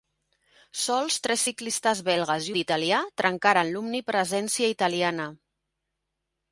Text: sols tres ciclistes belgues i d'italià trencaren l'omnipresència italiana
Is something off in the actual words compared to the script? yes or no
no